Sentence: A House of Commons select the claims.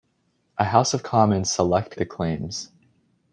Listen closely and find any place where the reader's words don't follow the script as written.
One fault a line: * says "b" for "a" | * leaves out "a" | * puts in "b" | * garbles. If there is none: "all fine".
all fine